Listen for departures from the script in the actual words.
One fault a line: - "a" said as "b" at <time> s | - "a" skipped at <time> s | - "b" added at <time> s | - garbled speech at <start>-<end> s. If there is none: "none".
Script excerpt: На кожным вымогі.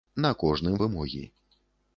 none